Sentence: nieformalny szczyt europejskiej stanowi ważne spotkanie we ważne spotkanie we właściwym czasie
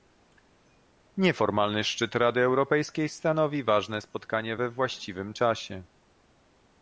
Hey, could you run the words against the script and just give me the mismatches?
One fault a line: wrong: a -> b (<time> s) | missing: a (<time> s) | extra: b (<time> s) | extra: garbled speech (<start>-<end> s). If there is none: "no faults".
extra: rady (2.1 s)
missing: ważne spotkanie we (4.7 s)